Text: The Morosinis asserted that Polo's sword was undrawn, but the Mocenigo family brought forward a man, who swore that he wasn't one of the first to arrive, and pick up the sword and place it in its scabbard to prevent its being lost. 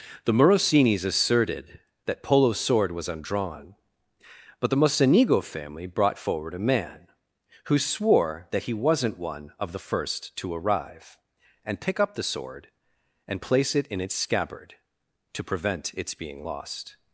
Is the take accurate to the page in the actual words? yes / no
yes